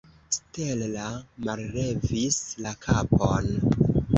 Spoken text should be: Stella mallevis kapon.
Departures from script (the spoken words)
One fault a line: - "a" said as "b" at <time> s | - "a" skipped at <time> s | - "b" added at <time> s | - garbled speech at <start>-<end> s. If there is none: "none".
- "la" added at 2.7 s